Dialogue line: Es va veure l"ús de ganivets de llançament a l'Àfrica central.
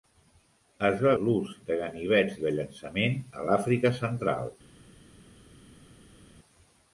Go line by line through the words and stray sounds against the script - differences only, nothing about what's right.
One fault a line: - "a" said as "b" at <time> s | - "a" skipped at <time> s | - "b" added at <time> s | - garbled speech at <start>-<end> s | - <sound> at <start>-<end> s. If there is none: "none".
- "veure" skipped at 1.1 s